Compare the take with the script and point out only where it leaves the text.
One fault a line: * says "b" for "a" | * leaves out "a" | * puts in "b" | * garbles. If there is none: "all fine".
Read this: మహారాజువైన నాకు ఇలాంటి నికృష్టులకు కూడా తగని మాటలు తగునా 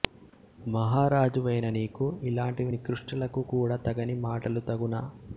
* says "నీకు" for "నాకు"